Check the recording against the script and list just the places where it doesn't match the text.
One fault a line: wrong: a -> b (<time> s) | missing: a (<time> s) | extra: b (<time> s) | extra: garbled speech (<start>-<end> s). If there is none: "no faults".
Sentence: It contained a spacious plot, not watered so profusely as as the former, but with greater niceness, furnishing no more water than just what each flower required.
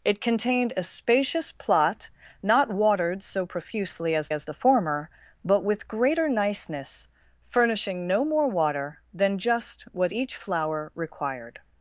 no faults